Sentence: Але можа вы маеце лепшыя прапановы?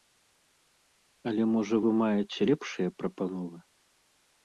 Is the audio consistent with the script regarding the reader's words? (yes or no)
yes